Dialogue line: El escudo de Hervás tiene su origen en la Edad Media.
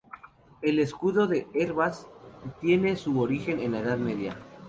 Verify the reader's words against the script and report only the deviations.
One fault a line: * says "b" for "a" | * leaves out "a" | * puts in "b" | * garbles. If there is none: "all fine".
all fine